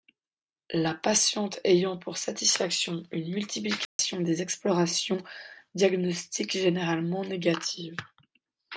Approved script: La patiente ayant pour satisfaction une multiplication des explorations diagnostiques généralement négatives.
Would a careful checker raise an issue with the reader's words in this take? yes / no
no